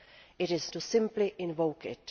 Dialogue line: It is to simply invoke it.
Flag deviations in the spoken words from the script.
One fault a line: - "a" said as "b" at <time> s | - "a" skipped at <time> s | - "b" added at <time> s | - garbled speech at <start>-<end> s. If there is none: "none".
none